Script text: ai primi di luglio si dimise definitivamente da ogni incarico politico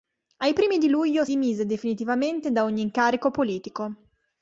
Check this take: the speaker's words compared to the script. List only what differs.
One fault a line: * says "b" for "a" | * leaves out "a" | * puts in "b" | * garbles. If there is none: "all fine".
* leaves out "si"